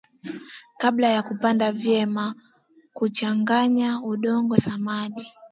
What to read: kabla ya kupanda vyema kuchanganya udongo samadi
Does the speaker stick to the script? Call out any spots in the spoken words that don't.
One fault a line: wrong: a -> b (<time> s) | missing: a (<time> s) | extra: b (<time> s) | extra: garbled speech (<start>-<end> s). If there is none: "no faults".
no faults